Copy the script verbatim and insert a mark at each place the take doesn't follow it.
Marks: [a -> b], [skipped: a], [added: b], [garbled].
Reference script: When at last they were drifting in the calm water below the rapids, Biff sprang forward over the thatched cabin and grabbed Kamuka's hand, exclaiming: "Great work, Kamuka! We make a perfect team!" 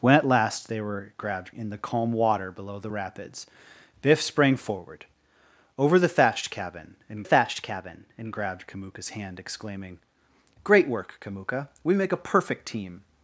When at last they were [drifting -> grabbed] in the calm water below the rapids, Biff sprang forward over the thatched cabin and [added: thatched cabin and] grabbed Kamuka's hand, exclaiming: "Great work, Kamuka! We make a perfect team!"